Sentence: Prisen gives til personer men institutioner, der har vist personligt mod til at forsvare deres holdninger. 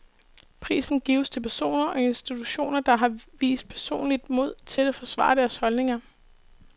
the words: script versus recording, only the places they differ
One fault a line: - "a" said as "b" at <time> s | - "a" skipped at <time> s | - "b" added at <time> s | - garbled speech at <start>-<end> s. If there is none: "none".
- "men" said as "og" at 1.9 s